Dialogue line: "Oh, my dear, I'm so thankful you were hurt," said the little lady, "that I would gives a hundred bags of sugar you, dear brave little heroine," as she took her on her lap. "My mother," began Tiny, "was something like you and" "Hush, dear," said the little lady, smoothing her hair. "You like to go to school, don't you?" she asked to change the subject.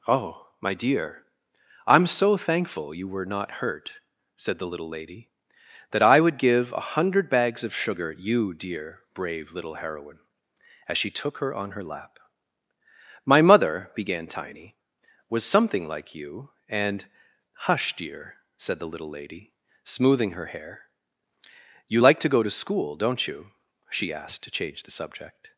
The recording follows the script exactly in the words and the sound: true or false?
false